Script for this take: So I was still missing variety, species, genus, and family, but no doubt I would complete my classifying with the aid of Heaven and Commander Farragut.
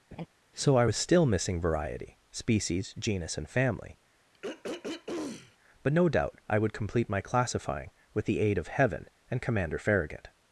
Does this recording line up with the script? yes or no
yes